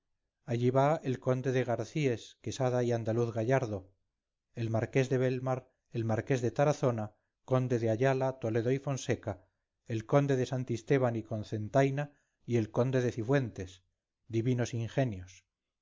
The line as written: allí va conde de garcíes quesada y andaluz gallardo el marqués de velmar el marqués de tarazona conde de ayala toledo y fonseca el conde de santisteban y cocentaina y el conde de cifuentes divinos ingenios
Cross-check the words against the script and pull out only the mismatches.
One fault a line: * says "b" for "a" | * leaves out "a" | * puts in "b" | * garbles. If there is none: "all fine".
* puts in "el"